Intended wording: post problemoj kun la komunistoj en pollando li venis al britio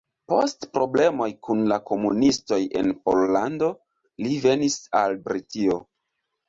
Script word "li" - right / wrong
right